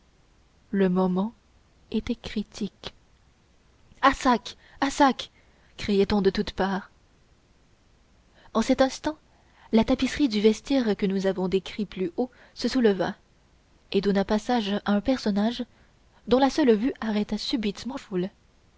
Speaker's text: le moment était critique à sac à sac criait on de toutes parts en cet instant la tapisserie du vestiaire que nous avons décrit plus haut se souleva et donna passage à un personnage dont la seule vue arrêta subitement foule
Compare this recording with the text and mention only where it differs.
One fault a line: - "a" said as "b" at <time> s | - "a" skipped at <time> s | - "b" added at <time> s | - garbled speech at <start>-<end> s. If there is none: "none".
none